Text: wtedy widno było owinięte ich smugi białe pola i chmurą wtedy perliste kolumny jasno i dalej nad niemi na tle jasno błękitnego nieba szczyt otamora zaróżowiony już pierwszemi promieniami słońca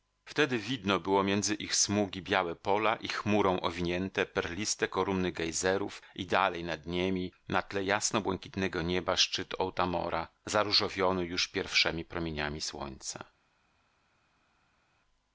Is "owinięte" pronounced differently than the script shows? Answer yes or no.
yes